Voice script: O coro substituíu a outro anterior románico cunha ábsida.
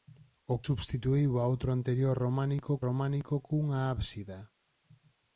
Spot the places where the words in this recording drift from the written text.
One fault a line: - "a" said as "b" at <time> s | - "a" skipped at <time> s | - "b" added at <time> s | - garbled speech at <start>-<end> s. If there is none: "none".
- "coro" skipped at 0.6 s
- "románico" added at 2.9 s